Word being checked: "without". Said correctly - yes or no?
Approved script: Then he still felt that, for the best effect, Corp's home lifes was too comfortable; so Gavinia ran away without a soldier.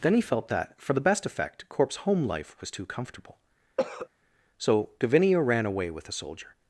no